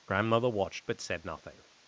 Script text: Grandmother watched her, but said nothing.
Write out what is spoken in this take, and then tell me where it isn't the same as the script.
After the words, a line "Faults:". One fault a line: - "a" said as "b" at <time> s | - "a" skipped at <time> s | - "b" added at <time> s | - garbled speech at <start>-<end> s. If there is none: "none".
Grandmother watched but said nothing.
Faults:
- "her" skipped at 0.8 s